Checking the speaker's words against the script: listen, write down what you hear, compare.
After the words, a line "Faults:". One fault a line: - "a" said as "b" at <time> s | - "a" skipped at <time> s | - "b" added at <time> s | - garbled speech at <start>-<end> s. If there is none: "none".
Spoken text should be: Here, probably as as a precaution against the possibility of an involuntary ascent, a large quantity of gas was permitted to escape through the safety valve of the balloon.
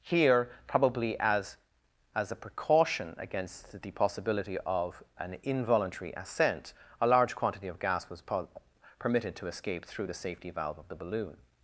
Here, probably as as a precaution against the possibility of an involuntary ascent, a large quantity of gas was permitted to escape through the safety valve of the balloon.
Faults:
none